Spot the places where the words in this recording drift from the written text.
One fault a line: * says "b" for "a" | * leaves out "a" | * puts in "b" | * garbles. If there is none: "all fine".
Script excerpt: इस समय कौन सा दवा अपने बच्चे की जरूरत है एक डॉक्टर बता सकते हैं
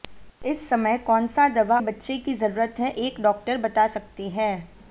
* leaves out "अपने"